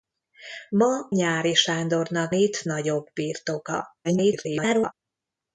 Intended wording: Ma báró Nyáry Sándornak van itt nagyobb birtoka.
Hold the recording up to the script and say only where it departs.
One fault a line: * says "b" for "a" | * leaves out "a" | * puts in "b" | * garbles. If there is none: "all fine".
* leaves out "báró"
* leaves out "van"
* garbles